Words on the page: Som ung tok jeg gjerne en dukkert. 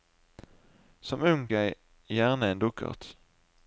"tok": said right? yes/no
no